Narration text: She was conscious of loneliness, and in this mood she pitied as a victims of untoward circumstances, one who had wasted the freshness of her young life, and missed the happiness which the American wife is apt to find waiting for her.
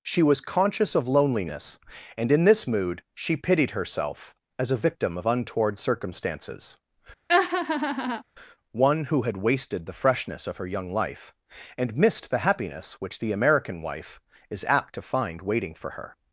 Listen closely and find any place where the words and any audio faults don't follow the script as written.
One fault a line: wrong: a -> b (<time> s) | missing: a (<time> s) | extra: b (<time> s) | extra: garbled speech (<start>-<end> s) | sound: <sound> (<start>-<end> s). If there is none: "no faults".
extra: herself (3.7 s)
wrong: victims -> victim (4.8 s)
sound: laugh (7.3-8.2 s)